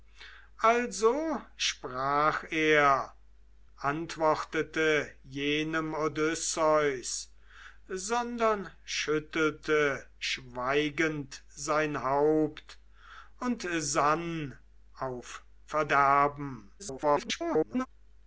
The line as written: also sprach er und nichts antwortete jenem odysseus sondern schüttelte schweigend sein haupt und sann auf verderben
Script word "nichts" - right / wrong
wrong